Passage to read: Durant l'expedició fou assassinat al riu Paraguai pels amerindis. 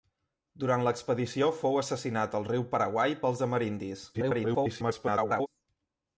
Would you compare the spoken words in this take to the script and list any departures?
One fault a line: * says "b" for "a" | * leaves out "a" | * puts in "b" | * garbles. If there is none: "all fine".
* garbles